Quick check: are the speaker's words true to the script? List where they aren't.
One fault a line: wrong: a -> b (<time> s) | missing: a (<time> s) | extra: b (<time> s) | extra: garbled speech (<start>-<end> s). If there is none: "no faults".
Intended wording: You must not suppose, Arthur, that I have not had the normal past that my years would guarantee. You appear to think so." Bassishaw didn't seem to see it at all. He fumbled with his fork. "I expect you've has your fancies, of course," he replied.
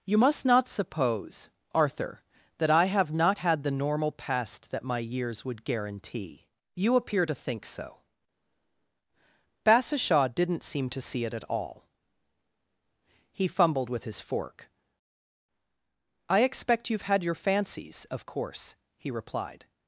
wrong: has -> had (17.1 s)